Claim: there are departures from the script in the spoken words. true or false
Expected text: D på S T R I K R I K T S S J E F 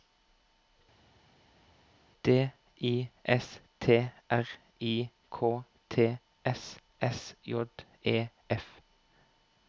true